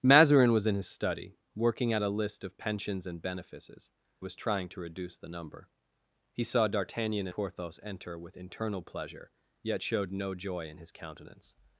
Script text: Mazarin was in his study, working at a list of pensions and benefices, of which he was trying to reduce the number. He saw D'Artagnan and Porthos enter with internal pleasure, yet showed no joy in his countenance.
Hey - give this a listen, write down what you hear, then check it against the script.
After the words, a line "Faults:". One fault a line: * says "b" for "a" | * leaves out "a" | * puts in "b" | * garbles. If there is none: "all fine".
Mazarin was in his study, working at a list of pensions and benefices, was trying to reduce the number. He saw D'Artagnan Porthos enter with internal pleasure, yet showed no joy in his countenance.
Faults:
* leaves out "of which he"
* leaves out "and"